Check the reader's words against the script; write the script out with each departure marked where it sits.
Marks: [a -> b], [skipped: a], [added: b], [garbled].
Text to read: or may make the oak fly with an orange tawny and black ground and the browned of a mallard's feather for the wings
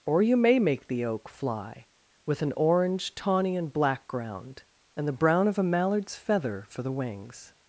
or [added: you] may make the oak fly with an orange tawny and black ground and the [browned -> brown] of a mallard's feather for the wings